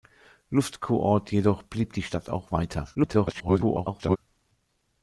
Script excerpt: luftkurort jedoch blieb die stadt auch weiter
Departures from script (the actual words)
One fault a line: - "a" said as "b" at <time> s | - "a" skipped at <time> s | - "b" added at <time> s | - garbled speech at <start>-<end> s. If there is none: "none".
- garbled speech at 2.9-4.2 s